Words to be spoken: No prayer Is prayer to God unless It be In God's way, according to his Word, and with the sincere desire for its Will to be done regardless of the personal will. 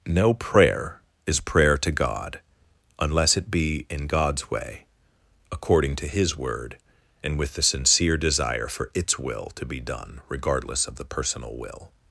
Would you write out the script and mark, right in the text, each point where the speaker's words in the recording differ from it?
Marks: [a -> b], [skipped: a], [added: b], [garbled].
No prayer Is prayer to God unless It be In God's way, according to his Word, and with the sincere desire for its Will to be done regardless of the personal will.